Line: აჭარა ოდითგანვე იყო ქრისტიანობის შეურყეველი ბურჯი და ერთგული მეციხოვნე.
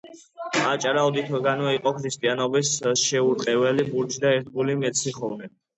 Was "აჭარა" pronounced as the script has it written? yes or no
yes